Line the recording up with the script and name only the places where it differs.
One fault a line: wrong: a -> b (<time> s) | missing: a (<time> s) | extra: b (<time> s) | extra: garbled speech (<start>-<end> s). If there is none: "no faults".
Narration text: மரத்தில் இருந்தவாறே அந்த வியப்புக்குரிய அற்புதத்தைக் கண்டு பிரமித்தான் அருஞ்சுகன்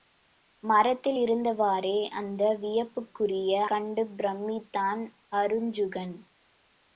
missing: அற்புதத்தைக் (3.6 s)